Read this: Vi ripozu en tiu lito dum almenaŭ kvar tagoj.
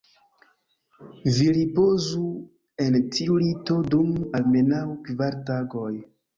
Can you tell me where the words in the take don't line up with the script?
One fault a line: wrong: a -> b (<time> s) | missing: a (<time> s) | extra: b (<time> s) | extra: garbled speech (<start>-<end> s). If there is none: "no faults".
no faults